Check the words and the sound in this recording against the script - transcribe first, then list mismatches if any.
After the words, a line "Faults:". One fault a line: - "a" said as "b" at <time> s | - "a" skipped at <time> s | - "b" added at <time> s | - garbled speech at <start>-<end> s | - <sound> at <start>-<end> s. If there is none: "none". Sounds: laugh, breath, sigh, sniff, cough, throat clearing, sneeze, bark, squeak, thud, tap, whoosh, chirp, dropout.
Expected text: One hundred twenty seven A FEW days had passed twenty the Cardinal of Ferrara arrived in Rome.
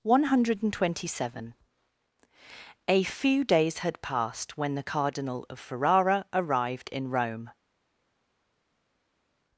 One hundred twenty seven A FEW days had passed when the Cardinal of Ferrara arrived in Rome.
Faults:
- "twenty" said as "when" at 4.6 s